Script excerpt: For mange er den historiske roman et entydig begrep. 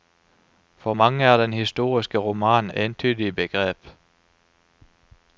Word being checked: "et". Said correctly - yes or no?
no